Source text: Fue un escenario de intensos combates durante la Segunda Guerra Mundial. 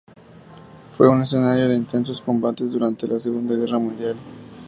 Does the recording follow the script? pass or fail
pass